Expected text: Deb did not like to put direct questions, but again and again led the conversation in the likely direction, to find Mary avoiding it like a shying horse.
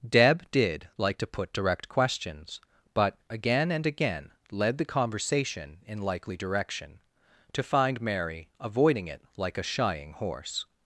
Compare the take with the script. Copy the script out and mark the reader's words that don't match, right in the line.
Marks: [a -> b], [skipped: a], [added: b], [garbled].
Deb did [skipped: not] like to put direct questions, but again and again led the conversation in [skipped: the] likely direction, to find Mary avoiding it like a shying horse.